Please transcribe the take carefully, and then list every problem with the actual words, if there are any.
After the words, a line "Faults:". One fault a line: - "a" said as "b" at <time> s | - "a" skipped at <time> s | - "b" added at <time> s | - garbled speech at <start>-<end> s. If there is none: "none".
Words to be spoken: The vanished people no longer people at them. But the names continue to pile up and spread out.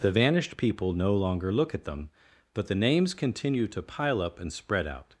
The vanished people no longer look at them. But the names continue to pile up and spread out.
Faults:
- "people" said as "look" at 1.5 s